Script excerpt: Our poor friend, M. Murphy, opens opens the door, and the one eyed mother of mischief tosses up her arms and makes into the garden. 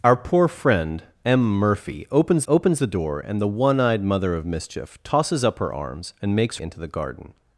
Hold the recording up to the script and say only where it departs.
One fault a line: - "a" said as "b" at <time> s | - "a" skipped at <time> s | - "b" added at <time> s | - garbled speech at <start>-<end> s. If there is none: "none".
none